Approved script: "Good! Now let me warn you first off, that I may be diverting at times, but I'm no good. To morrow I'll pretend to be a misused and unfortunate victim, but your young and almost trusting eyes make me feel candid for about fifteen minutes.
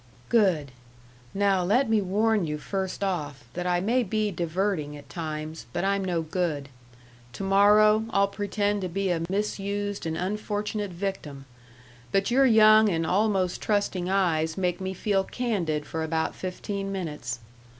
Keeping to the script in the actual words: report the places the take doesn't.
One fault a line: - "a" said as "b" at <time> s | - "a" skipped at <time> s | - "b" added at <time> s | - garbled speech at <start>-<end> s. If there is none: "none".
none